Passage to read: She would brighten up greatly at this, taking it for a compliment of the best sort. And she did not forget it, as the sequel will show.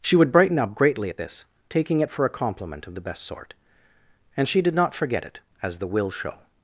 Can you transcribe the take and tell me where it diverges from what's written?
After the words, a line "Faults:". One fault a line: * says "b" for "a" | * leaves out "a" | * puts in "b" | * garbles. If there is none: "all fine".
She would brighten up greatly at this, taking it for a compliment of the best sort. And she did not forget it, as the will show.
Faults:
* leaves out "sequel"